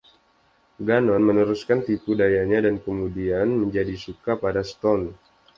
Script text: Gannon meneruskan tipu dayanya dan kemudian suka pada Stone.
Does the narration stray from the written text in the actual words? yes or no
yes